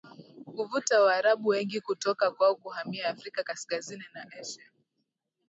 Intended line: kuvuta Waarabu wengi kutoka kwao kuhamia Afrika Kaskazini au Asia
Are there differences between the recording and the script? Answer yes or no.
yes